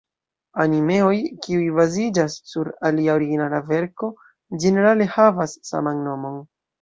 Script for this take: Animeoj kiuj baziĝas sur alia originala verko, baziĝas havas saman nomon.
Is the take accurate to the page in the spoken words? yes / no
no